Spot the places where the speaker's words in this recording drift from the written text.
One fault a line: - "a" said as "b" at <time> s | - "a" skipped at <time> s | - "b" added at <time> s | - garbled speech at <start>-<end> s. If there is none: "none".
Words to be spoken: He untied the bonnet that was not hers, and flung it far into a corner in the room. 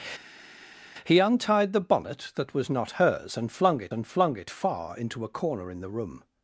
- "and flung it" added at 3.9 s